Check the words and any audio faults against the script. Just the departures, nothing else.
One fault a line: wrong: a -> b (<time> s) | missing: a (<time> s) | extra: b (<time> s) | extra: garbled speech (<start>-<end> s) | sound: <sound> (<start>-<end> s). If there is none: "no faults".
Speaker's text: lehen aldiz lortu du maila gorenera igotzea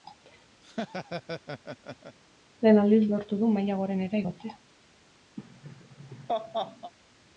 sound: laugh (0.6-2.2 s)
sound: laugh (5.4-6.9 s)